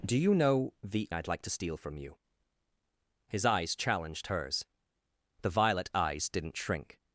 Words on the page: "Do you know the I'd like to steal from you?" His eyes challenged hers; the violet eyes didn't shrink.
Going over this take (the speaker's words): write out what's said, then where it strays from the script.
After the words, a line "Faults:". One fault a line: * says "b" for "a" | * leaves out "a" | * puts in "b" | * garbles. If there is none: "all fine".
"Do you know the I'd like to steal from you?" His eyes challenged hers; the violet eyes didn't shrink.
Faults:
all fine